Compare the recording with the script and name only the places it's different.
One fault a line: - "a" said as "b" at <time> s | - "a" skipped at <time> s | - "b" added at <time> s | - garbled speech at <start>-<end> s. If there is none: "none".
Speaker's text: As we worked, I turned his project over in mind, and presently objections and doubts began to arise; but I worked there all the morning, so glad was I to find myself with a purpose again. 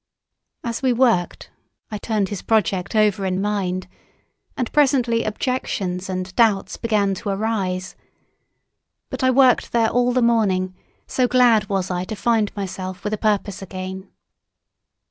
none